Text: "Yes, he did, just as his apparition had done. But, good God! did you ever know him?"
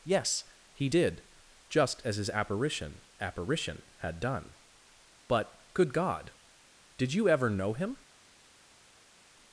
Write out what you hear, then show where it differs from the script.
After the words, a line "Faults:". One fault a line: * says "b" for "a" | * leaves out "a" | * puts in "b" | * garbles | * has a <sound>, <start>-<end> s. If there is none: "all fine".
"Yes, he did, just as his apparition apparition had done. But, good God! did you ever know him?"
Faults:
* puts in "apparition"